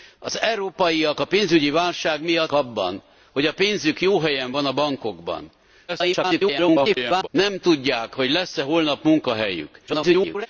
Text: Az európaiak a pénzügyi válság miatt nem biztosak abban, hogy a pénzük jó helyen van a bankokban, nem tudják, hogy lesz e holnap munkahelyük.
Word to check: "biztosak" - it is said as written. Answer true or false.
false